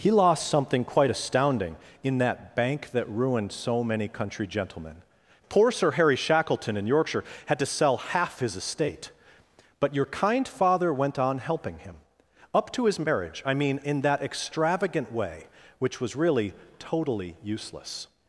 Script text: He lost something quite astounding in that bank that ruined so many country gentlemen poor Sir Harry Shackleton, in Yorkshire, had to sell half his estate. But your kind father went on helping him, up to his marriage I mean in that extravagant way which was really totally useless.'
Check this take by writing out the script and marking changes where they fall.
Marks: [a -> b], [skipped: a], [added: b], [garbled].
He lost something quite astounding in that bank that ruined so many country gentlemen poor Sir Harry Shackleton, in Yorkshire, had to sell half his estate. But your kind father went on helping him, up to his marriage I mean in that extravagant way which was really totally useless.'